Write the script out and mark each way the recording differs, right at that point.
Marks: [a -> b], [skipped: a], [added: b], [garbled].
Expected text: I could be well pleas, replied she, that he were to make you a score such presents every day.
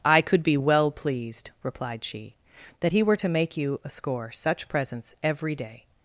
I could be well [pleas, -> pleased] replied she, that he were to make you a score such presents every day.